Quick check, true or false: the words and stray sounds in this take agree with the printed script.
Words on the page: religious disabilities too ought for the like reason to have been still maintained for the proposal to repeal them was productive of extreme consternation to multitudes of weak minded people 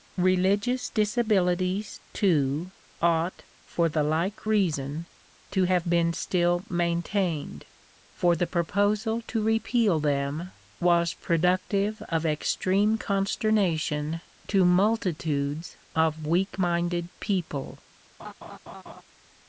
false